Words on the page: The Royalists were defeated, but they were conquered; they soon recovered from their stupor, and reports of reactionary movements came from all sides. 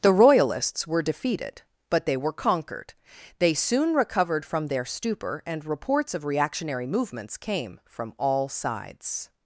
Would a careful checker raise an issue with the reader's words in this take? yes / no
no